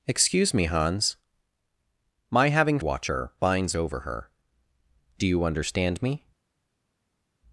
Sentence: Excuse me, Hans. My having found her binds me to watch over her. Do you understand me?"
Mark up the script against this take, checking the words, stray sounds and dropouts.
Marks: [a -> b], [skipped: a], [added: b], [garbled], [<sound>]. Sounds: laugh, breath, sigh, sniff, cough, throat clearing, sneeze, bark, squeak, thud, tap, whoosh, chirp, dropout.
Excuse me, Hans. My having [found -> watch] her binds [skipped: me to watch] over her. Do you understand me?"